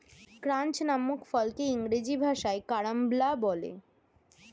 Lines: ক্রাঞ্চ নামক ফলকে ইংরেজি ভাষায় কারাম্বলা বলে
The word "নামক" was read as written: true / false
true